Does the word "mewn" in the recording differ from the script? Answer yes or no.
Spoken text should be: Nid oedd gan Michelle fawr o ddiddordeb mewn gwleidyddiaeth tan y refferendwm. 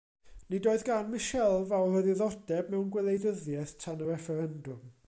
no